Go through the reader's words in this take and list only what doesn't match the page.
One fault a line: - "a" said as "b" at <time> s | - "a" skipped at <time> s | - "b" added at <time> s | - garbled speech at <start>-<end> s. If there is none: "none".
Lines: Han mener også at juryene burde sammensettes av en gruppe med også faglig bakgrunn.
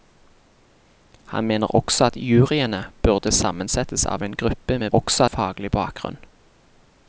none